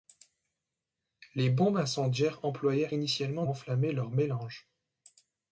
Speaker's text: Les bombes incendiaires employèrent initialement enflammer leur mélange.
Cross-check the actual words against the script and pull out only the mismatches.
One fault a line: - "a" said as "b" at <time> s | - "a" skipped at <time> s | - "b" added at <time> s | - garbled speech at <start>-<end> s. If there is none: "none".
none